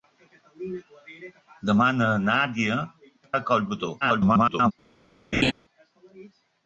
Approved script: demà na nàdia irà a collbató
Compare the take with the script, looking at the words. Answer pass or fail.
fail